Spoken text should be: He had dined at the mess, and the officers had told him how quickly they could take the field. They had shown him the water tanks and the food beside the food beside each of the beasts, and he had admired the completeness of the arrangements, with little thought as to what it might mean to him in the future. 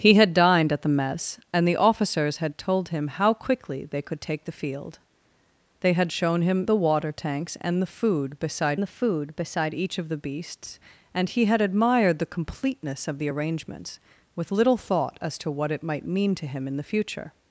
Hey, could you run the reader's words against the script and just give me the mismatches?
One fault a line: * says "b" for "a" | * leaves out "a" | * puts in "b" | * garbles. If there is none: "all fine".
all fine